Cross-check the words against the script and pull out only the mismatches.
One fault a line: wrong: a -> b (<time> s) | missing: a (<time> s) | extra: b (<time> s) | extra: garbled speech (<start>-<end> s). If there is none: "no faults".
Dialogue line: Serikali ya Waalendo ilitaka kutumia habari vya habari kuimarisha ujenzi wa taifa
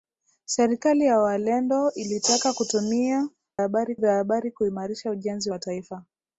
no faults